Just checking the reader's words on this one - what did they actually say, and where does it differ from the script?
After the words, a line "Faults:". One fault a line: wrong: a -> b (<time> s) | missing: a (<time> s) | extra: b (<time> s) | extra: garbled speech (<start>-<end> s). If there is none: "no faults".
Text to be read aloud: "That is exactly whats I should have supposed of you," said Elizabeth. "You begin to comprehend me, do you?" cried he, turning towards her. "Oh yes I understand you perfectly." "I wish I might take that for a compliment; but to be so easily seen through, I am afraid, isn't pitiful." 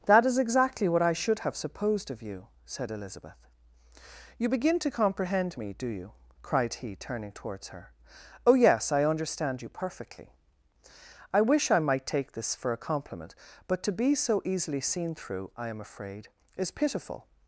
"That is exactly what I should have supposed of you," said Elizabeth. "You begin to comprehend me, do you?" cried he, turning towards her. "Oh yes I understand you perfectly." "I wish I might take this for a compliment; but to be so easily seen through, I am afraid, is pitiful."
Faults:
wrong: whats -> what (0.9 s)
wrong: that -> this (12.3 s)
wrong: isn't -> is (16.6 s)